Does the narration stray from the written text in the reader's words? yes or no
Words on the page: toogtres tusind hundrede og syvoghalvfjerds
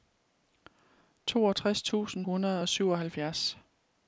no